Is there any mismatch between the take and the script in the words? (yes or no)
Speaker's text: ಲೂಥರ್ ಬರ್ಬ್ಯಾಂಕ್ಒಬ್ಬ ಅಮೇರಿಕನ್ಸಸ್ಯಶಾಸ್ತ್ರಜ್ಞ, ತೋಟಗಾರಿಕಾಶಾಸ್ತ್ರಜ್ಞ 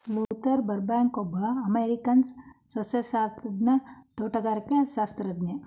no